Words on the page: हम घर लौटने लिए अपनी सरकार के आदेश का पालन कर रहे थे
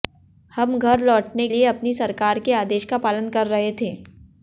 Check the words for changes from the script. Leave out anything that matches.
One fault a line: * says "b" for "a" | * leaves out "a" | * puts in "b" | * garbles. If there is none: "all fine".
all fine